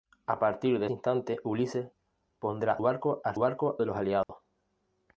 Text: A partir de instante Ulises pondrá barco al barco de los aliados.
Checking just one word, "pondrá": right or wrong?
right